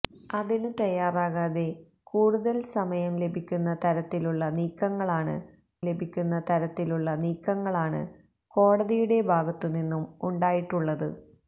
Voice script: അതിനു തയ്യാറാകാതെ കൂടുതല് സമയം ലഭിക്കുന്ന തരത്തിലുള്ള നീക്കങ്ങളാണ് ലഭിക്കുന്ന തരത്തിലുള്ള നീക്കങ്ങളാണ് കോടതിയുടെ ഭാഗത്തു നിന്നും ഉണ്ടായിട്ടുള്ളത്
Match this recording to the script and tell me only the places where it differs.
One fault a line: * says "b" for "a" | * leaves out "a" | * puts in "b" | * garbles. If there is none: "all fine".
all fine